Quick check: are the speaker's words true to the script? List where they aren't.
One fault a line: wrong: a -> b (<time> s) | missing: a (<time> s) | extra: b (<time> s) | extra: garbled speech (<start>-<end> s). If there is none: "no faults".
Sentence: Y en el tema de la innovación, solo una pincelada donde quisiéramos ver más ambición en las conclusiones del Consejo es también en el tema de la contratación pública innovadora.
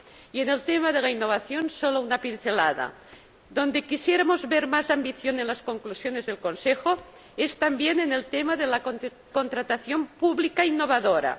no faults